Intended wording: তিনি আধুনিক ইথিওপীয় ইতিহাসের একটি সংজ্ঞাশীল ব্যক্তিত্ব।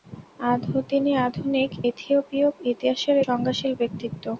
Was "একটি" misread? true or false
true